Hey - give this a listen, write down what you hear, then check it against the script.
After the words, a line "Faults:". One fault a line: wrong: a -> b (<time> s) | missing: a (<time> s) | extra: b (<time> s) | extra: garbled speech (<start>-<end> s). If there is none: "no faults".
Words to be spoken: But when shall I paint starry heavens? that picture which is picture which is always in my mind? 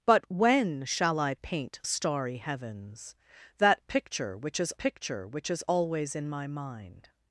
But when shall I paint starry heavens? that picture which is picture which is always in my mind?
Faults:
no faults